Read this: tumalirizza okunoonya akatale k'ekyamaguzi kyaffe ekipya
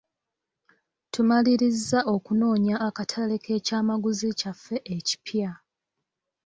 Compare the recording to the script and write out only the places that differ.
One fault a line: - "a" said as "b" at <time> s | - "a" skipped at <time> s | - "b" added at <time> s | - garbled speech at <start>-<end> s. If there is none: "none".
none